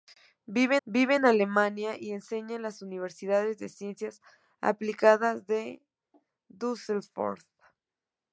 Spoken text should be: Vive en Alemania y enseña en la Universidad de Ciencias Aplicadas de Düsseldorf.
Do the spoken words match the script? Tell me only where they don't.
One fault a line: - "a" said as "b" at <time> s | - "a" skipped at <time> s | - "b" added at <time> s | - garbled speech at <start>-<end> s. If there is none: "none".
- "vive" added at 0.9 s